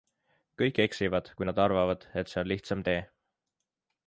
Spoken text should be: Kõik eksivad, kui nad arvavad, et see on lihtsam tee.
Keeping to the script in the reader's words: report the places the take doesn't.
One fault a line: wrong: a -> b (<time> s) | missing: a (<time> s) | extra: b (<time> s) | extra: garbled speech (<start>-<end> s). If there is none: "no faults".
no faults